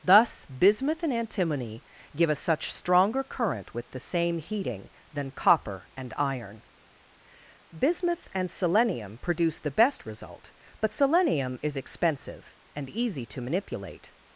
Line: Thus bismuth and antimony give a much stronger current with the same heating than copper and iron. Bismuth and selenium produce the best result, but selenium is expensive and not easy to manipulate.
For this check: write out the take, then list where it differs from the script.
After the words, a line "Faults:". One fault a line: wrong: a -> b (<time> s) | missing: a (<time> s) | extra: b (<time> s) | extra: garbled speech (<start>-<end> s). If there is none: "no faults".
Thus bismuth and antimony give a such stronger current with the same heating than copper and iron. Bismuth and selenium produce the best result, but selenium is expensive and easy to manipulate.
Faults:
wrong: much -> such (2.4 s)
missing: not (12.9 s)